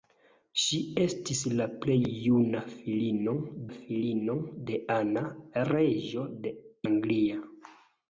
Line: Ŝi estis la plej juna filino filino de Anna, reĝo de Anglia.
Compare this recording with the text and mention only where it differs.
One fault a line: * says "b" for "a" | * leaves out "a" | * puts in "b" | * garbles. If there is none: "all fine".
all fine